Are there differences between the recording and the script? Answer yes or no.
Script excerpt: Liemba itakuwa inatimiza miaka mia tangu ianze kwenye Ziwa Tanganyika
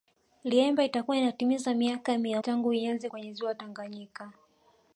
no